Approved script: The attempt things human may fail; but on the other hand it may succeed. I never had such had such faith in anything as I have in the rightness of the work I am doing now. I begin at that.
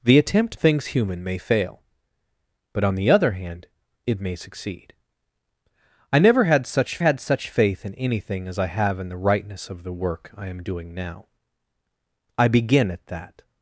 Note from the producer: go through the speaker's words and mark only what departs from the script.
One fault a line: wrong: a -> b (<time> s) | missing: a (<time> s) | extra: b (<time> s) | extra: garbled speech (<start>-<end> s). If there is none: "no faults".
no faults